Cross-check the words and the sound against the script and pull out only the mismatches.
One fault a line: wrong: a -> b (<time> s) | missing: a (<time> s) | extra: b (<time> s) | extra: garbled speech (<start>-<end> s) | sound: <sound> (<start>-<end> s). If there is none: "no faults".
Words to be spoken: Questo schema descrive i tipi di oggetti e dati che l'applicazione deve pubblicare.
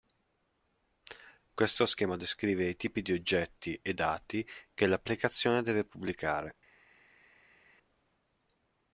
no faults